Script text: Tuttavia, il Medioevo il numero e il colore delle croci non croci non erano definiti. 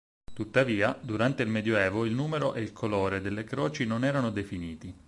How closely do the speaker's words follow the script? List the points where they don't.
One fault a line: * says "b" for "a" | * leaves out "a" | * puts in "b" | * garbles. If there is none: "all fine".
* puts in "durante"
* leaves out "croci non"